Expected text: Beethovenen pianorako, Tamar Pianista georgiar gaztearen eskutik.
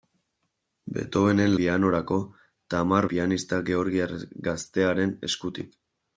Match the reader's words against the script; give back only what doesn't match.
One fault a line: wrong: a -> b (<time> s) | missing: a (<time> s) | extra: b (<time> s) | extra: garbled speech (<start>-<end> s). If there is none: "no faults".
no faults